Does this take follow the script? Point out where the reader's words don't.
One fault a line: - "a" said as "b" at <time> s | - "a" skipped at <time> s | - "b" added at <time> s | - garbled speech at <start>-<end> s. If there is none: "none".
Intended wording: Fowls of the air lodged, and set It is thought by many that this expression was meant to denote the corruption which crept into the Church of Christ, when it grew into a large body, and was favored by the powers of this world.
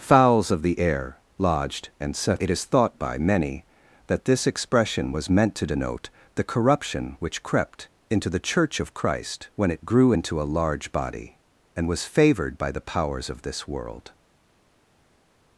none